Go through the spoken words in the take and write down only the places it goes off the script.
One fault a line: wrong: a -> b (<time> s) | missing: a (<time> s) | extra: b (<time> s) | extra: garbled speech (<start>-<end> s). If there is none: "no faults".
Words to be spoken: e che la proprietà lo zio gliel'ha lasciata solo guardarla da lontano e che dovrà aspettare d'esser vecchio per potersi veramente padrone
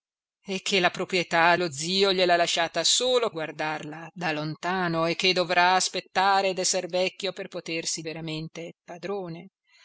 no faults